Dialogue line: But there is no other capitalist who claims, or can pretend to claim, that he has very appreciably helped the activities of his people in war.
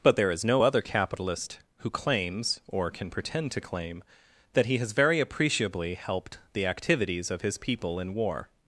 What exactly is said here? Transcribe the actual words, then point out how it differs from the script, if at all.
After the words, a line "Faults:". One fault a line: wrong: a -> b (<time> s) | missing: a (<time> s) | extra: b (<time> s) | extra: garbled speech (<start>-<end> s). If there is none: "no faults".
But there is no other capitalist who claims, or can pretend to claim, that he has very appreciably helped the activities of his people in war.
Faults:
no faults